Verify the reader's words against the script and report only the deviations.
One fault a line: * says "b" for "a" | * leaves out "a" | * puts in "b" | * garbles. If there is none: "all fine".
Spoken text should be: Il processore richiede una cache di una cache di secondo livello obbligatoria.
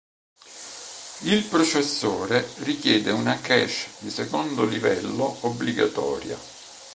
* leaves out "una cache di"